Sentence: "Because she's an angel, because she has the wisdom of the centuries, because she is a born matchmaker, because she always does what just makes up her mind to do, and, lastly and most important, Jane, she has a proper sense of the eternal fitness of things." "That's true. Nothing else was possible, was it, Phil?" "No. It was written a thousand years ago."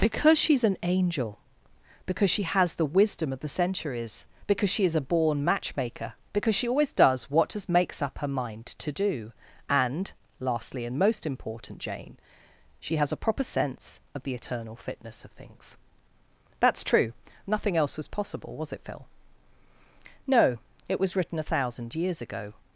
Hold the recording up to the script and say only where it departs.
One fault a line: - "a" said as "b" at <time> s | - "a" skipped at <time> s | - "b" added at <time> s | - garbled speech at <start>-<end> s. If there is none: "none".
none